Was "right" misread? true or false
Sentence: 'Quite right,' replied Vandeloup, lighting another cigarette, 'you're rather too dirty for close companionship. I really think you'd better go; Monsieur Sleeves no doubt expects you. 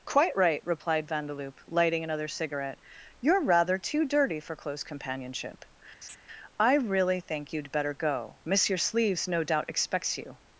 false